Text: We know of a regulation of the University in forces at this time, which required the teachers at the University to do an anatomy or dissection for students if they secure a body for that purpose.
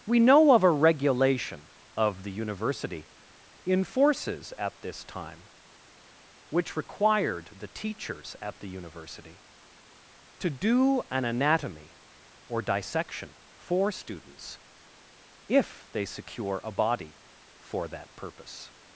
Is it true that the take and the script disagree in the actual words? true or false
false